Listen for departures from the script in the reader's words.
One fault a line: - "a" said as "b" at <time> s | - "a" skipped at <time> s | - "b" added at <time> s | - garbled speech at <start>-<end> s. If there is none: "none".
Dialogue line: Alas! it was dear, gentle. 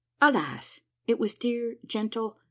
none